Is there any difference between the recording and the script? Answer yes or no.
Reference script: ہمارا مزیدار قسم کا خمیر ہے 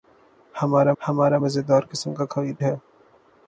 yes